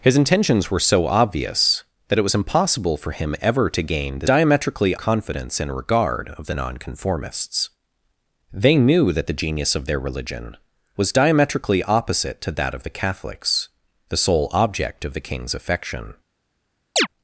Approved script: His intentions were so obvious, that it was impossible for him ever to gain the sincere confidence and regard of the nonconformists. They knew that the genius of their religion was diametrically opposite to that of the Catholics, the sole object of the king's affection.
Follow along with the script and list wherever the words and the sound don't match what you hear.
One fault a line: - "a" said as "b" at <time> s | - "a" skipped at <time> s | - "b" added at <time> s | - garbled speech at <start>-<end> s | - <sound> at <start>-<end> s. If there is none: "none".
- "sincere" said as "diametrically" at 4.2 s
- chirp at 17.0-17.1 s